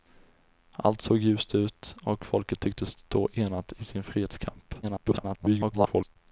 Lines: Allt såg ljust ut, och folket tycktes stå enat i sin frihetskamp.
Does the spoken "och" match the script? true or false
true